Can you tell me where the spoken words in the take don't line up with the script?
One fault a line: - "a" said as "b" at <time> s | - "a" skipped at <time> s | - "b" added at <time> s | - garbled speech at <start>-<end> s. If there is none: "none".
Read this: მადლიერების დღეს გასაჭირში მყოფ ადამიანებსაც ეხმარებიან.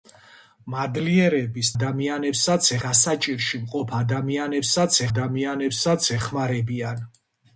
- "დღეს" said as "ადამიანებსაც" at 1.7 s
- "ადამიანებსაც" added at 5.1 s